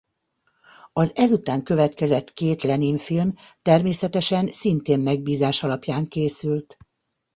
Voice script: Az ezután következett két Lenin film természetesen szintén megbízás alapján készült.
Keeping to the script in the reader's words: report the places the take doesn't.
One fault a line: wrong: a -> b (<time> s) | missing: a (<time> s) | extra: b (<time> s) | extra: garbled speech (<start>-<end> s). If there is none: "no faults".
no faults